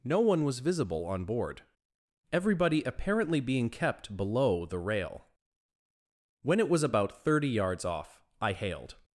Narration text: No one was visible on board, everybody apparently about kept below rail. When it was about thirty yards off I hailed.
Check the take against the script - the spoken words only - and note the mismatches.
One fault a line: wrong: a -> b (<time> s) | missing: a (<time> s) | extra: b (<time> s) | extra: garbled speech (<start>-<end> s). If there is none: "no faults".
wrong: about -> being (3.4 s)
extra: the (4.7 s)